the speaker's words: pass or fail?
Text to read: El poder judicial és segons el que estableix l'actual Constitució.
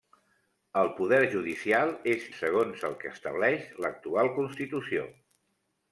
pass